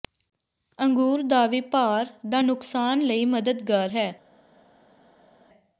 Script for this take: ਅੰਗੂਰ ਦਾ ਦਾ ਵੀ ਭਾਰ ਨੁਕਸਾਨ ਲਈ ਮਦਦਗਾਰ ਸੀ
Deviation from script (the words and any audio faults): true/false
true